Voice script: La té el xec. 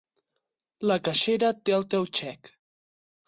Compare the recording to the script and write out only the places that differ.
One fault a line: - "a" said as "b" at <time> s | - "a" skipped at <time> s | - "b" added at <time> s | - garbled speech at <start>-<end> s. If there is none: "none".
- "caixera" added at 1.1 s
- "teu" added at 1.9 s